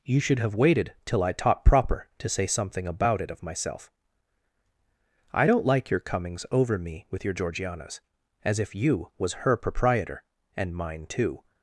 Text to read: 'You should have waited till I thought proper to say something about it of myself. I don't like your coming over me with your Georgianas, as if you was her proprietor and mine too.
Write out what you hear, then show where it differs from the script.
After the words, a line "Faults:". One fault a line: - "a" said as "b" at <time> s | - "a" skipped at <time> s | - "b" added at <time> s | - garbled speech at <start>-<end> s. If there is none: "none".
'You should have waited till I taught proper to say something about it of myself. I don't like your comings over me with your Georgianas, as if you was her proprietor and mine too.
Faults:
- "thought" said as "taught" at 1.3 s
- "coming" said as "comings" at 6.0 s